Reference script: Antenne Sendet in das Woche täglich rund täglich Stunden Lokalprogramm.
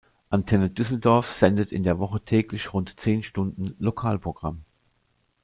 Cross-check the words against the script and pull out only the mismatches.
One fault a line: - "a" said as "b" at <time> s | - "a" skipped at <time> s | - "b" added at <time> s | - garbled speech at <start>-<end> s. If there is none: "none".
- "Düsseldorf" added at 0.7 s
- "das" said as "der" at 1.8 s
- "täglich" said as "zehn" at 3.0 s